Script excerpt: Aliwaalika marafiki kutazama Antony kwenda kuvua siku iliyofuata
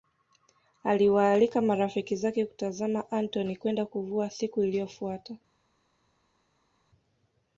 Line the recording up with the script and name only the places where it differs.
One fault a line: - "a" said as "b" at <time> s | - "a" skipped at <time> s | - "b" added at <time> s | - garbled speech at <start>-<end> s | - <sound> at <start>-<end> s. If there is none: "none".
- "zake" added at 2.1 s